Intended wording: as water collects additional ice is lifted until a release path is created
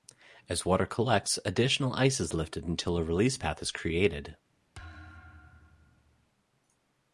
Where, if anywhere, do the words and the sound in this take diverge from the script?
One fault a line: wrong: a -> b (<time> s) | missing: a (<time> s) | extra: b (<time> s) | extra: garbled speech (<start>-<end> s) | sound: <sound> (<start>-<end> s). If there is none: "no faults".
sound: thud (4.7-6.3 s)